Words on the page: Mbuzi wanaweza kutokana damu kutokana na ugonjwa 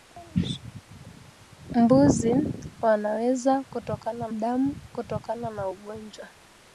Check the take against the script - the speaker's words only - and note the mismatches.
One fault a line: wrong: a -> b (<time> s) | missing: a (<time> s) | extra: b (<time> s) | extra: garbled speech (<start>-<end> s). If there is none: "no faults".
no faults